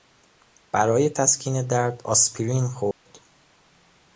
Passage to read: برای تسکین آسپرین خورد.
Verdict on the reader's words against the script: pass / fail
fail